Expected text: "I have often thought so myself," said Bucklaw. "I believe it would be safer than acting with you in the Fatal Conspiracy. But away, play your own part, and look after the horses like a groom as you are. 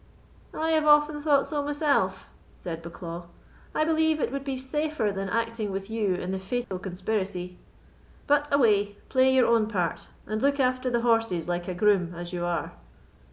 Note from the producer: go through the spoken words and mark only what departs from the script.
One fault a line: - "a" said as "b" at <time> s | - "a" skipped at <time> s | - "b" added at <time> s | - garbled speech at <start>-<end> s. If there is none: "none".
none